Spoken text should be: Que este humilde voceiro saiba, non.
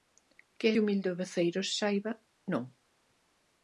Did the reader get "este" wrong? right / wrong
wrong